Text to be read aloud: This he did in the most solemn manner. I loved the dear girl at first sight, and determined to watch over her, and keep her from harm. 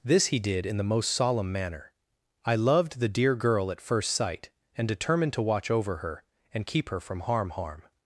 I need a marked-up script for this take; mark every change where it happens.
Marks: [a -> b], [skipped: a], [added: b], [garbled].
This he did in the most solemn manner. I loved the dear girl at first sight, and determined to watch over her, and keep her from harm. [added: harm]